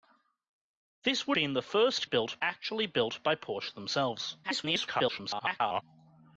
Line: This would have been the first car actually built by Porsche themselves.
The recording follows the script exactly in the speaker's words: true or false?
false